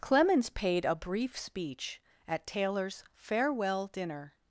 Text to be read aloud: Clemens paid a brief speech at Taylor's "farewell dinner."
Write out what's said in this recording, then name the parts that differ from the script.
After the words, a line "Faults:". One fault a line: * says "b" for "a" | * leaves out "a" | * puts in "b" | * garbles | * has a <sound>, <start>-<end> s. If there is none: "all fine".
Clemens paid a brief speech at Taylor's "farewell dinner."
Faults:
all fine